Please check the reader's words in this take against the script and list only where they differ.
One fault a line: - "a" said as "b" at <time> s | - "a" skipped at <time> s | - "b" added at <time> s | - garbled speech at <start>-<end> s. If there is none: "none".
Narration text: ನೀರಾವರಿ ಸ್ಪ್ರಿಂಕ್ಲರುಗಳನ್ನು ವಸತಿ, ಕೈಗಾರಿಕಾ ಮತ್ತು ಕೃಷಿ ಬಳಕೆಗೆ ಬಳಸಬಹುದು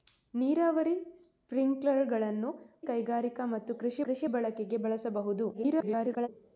- "ವಸತಿ" skipped at 2.5 s
- "ಕೃಷಿ" added at 4.0 s
- garbled speech at 5.5-6.3 s